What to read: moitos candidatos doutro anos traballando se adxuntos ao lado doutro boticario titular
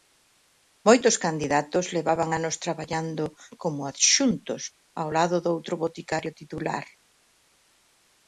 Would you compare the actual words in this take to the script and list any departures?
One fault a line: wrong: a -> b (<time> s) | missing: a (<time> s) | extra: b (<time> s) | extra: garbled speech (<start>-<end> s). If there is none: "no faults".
wrong: doutro -> levaban (2.0 s)
wrong: se -> como (3.6 s)